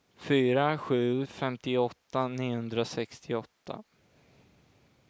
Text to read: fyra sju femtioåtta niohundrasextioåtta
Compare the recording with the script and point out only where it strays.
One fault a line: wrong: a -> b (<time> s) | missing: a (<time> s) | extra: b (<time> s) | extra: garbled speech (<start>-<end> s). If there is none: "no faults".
no faults